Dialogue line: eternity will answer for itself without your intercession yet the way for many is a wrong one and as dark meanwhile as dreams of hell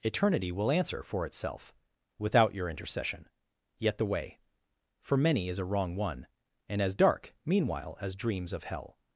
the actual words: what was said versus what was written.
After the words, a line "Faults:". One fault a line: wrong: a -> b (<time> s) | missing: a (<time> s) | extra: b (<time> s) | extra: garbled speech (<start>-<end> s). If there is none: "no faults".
eternity will answer for itself without your intercession yet the way for many is a wrong one and as dark meanwhile as dreams of hell
Faults:
no faults